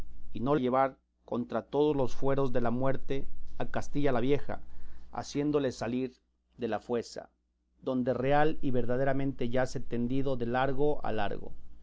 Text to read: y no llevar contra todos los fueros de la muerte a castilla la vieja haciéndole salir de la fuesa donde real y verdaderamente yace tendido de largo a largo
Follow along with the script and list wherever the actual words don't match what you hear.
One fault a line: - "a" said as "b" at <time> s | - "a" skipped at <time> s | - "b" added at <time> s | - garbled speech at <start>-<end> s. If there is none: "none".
none